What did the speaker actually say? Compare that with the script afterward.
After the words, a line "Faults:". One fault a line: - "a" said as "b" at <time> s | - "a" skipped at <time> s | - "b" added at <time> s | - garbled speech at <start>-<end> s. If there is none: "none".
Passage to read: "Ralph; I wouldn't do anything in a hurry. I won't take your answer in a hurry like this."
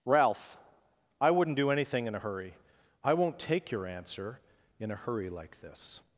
"Ralph; I wouldn't do anything in a hurry. I won't take your answer in a hurry like this."
Faults:
none